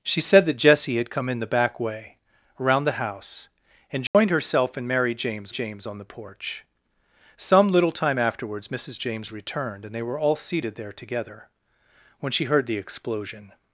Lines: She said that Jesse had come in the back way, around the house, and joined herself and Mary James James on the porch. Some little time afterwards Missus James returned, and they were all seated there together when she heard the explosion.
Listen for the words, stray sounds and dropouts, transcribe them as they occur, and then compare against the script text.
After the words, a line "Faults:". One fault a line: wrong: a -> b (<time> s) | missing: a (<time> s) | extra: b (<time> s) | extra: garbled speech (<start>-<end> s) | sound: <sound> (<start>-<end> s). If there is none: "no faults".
She said that Jesse had come in the back way, around the house, and joined herself and Mary James James on the porch. Some little time afterwards Missus James returned, and they were all seated there together when she heard the explosion.
Faults:
sound: dropout (4.1-4.1 s)